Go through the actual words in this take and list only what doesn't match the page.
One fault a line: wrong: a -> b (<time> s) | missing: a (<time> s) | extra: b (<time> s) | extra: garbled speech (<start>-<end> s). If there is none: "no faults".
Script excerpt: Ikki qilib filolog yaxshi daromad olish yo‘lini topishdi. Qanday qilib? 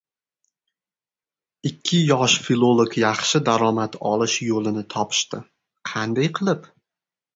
wrong: qilib -> yosh (2.1 s)